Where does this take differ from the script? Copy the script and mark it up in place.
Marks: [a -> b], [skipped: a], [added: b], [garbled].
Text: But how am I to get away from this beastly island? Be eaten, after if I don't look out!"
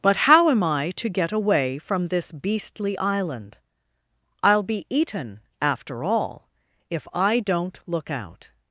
But how am I to get away from this beastly island? [added: I'll] Be eaten, after [added: all] if I don't look out!"